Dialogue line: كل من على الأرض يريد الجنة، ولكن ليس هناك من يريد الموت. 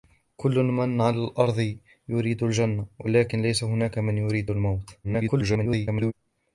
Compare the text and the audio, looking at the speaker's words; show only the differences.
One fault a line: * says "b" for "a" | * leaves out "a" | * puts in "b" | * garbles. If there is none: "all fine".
* garbles